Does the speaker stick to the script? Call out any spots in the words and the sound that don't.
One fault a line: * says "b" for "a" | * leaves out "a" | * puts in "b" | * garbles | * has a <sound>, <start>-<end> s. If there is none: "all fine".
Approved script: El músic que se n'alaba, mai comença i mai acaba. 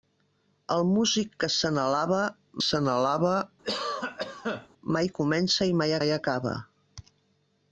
* puts in "se n'alaba"
* has a cough, 3.6-4.7 s
* puts in "mai"